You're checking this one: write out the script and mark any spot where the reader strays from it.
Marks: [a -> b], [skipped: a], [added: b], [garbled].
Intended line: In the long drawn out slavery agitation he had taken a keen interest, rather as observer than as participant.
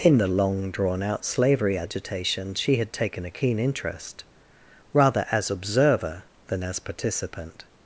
In the long drawn out slavery agitation [he -> she] had taken a keen interest, rather as observer than as participant.